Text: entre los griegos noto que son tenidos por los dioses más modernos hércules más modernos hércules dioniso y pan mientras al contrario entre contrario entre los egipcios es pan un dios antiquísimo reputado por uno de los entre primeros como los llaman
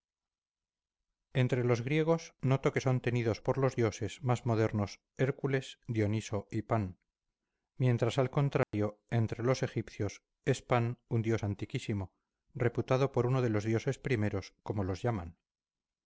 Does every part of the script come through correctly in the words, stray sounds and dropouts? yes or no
no